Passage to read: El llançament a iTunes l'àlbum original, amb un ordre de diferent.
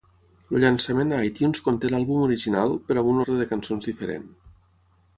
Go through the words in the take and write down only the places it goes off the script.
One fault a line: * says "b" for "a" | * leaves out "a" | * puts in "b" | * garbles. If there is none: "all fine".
* puts in "conté"
* puts in "però"
* puts in "cançons"